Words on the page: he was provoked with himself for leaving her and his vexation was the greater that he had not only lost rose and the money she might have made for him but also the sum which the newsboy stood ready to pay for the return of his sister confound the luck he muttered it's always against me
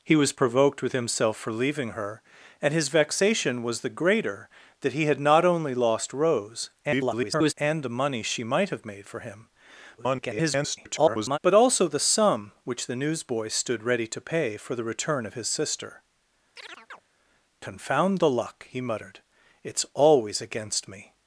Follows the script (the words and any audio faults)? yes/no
no